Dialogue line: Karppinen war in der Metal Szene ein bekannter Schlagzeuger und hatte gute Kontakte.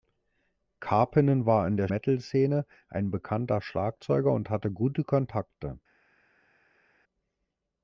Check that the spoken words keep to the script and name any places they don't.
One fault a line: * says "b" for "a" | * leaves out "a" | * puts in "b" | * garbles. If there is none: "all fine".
all fine